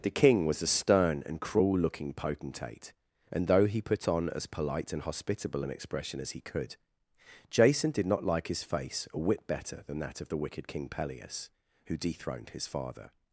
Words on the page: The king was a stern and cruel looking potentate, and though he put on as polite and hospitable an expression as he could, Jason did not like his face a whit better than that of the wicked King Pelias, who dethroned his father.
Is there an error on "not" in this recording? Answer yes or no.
no